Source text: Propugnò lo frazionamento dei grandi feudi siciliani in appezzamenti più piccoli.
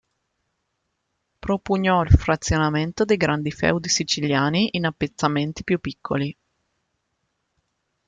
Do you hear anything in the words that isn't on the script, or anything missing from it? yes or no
yes